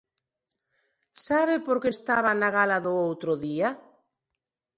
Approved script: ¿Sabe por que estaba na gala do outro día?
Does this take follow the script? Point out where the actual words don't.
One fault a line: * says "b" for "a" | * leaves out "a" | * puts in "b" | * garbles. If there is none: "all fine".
all fine